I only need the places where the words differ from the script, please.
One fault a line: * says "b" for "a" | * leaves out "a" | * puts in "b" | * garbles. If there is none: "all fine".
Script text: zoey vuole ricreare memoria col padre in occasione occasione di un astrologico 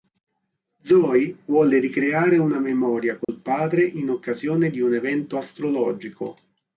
* puts in "una"
* leaves out "occasione"
* puts in "evento"